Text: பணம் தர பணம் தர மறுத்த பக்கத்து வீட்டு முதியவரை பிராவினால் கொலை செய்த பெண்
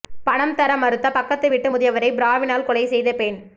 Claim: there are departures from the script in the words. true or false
true